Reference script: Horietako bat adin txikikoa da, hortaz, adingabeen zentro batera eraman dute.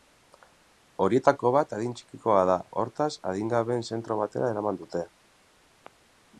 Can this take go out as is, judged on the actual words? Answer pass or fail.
pass